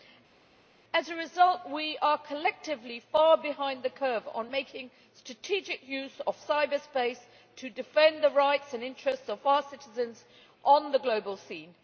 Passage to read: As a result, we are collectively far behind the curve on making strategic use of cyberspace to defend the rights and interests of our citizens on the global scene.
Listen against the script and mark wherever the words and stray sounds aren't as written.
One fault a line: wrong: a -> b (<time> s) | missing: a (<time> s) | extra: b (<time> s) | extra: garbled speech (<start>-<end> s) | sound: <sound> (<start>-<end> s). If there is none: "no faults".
no faults